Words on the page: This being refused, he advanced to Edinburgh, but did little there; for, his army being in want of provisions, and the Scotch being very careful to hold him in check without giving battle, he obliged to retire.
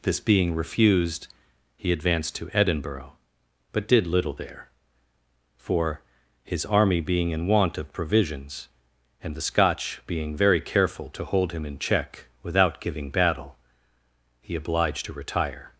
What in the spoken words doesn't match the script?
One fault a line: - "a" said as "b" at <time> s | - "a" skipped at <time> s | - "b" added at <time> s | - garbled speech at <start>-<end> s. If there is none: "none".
none